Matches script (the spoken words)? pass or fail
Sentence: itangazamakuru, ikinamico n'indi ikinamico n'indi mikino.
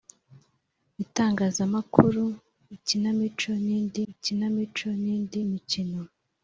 pass